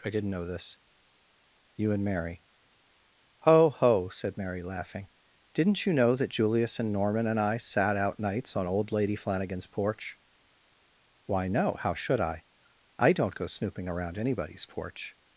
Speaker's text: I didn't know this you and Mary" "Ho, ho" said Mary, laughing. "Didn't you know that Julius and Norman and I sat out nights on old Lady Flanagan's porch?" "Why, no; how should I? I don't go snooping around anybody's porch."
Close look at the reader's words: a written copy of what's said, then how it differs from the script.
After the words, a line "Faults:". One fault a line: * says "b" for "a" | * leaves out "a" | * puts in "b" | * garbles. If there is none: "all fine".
I didn't know this you and Mary" "Ho, ho" said Mary, laughing. "Didn't you know that Julius and Norman and I sat out nights on old Lady Flanagan's porch?" "Why, no; how should I? I don't go snooping around anybody's porch."
Faults:
all fine